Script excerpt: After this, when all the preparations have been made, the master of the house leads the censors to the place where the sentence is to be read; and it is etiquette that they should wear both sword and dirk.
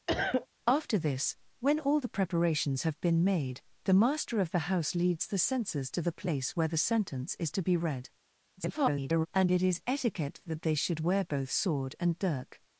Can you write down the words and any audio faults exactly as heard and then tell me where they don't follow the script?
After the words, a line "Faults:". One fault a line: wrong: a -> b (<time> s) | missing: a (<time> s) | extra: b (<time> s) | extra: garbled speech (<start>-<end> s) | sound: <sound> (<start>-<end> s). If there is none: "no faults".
After this, when all the preparations have been made, the master of the house leads the censors to the place where the sentence is to be read; [garbled] and it is etiquette that they should wear both sword and dirk.
Faults:
sound: cough (0.1-0.5 s)
extra: garbled speech (8.6-9.3 s)